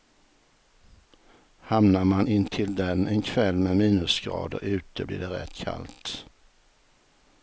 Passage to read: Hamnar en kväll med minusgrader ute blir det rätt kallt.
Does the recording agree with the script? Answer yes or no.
no